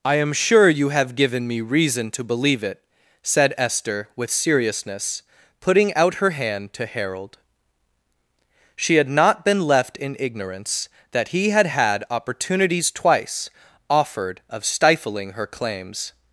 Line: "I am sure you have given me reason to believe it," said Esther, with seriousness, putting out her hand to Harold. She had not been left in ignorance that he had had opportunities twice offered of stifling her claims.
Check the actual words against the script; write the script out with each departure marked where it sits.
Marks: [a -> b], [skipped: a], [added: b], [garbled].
"I am sure you have given me reason to believe it," said Esther, with seriousness, putting out her hand to Harold. She had not been left in ignorance that he had had opportunities twice offered of stifling her claims.